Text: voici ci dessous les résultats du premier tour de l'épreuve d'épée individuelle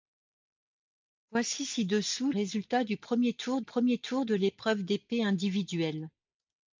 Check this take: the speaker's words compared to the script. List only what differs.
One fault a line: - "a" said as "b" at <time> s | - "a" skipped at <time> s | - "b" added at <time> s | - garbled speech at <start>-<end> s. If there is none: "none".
- "les" skipped at 2.3 s
- "premier tour" added at 3.6 s